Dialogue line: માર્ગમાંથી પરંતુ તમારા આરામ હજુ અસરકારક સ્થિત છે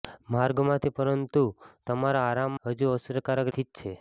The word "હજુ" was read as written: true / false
true